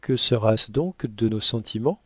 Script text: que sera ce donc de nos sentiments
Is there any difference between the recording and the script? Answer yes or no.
no